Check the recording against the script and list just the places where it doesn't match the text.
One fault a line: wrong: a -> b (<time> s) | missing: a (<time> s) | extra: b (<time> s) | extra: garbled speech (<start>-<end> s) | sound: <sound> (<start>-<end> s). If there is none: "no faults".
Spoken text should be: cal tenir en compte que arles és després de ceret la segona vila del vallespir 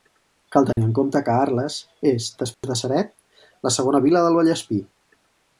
sound: dropout (0.7-0.8 s)
sound: dropout (2.5-2.6 s)